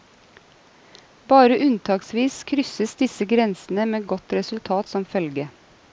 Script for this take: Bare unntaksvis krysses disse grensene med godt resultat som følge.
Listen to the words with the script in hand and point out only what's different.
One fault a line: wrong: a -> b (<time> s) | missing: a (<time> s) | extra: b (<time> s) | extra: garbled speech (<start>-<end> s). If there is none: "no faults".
no faults